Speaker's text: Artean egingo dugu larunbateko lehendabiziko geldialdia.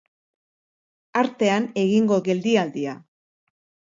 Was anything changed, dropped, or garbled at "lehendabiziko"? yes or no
yes